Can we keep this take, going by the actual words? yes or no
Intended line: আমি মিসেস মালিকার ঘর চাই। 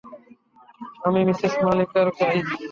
no